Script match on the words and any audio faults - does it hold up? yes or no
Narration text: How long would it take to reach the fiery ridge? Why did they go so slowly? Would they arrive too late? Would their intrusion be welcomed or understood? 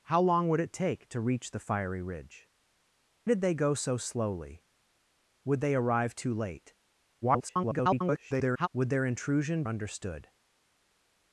no